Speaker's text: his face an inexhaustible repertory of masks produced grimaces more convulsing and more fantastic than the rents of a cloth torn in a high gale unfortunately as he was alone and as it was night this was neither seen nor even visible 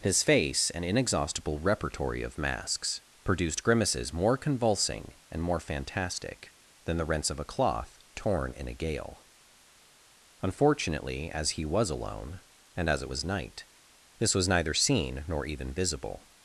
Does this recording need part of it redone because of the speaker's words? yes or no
yes